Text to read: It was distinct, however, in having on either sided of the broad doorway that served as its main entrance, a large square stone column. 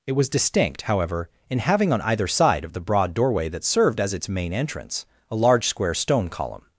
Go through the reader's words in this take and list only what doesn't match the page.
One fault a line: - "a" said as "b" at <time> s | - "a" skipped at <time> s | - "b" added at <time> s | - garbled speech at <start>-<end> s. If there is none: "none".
- "sided" said as "side" at 2.3 s